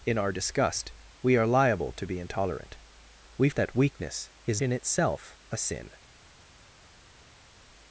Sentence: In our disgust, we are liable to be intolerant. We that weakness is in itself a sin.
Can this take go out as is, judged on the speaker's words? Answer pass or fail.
pass